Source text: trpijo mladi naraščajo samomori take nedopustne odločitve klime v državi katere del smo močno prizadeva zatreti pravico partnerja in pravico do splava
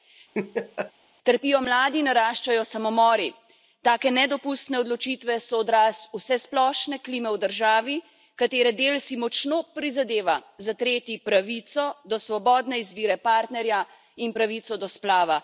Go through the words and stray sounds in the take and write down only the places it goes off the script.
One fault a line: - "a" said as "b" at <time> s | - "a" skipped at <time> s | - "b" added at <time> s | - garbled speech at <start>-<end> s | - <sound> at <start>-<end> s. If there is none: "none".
- laugh at 0.3-0.9 s
- "so odraz vsesplošne" added at 5.5 s
- "smo" said as "si" at 9.0 s
- "do svobodne izbire" added at 12.1 s